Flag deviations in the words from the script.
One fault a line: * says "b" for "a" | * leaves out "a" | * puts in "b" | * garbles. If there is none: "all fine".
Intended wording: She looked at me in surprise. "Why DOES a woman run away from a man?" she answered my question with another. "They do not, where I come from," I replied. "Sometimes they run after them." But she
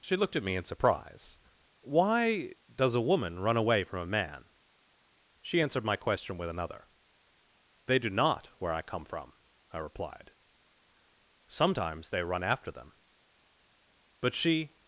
all fine